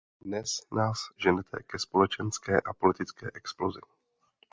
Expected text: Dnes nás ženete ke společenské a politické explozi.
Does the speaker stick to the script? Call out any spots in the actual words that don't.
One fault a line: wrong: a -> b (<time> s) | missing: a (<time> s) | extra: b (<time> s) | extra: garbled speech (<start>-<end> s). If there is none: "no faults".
no faults